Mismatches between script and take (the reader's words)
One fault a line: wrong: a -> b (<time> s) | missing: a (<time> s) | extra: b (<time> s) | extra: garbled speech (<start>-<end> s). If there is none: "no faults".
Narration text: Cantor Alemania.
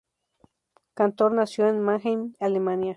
extra: nació en Mannheim (1.3 s)